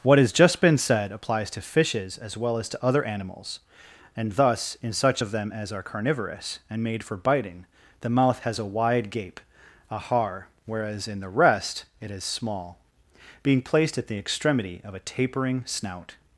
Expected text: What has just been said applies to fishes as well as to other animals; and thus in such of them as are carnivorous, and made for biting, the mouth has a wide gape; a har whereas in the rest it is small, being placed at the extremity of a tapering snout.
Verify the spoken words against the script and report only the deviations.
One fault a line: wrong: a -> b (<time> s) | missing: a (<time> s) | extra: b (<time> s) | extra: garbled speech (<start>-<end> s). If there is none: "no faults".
no faults